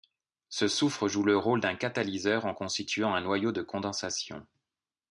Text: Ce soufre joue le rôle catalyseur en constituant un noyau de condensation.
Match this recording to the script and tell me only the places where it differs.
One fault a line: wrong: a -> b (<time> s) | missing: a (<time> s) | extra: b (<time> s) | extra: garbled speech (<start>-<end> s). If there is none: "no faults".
extra: d'un (1.6 s)